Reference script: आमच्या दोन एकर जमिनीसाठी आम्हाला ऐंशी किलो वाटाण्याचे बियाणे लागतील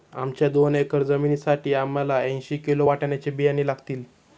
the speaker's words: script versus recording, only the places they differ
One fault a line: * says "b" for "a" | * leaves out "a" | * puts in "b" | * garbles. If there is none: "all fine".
all fine